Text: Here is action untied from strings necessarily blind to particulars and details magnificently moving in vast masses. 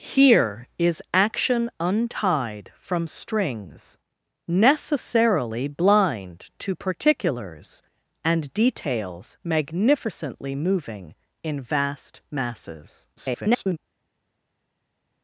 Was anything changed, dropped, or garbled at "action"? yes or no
no